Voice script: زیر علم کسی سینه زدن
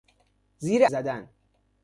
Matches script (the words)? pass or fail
fail